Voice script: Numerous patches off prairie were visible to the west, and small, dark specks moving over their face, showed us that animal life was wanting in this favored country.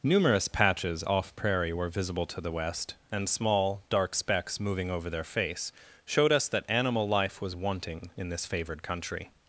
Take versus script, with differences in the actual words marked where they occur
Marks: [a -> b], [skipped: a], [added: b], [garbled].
Numerous patches off prairie were visible to the west, and small, dark specks moving over their face, showed us that animal life was wanting in this favored country.